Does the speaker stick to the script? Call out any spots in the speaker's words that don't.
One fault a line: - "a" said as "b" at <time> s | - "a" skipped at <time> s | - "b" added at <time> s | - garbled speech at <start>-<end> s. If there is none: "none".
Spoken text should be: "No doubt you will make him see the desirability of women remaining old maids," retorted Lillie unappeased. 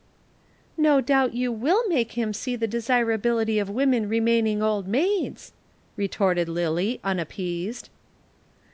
none